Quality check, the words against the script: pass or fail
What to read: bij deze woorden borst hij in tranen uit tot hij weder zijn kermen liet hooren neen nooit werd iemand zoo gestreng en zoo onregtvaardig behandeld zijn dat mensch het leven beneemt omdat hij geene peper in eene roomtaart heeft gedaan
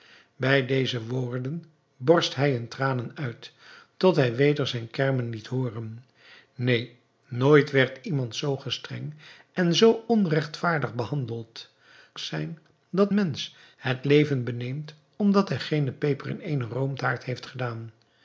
pass